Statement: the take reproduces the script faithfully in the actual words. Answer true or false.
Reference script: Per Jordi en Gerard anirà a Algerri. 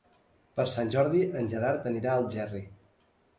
false